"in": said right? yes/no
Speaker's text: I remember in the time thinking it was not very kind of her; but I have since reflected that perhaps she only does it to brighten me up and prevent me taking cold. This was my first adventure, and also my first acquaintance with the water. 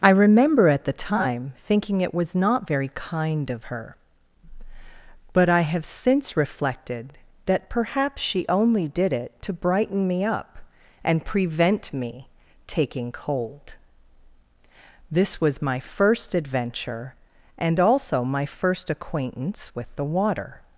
no